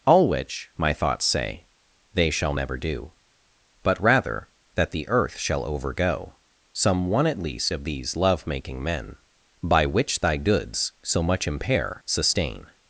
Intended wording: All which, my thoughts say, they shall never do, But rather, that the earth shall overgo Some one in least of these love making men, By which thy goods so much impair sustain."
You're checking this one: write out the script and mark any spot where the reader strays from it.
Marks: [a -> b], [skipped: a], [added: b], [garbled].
All which, my thoughts say, they shall never do, But rather, that the earth shall overgo Some one [in -> at] least of these love making men, By which thy goods so much impair sustain."